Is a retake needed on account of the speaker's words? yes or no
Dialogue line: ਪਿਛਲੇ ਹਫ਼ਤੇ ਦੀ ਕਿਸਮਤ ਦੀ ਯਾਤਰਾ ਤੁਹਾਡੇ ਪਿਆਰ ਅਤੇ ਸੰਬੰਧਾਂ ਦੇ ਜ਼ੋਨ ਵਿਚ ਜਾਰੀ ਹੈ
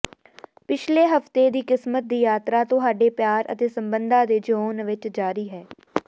no